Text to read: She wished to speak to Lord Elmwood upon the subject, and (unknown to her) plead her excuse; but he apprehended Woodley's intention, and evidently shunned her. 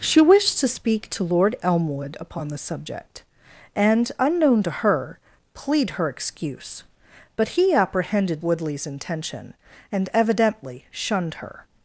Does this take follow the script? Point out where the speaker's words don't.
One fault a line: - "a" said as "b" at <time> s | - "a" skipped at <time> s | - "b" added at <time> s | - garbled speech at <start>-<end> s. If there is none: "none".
none